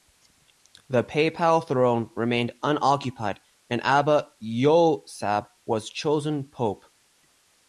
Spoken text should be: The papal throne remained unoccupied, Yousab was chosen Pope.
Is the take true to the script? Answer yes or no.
no